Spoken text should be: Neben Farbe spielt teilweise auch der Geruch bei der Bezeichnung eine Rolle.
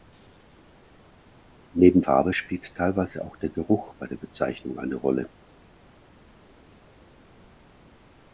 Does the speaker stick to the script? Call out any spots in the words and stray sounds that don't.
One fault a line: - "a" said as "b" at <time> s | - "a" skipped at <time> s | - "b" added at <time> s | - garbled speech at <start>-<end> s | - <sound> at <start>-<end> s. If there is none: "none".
none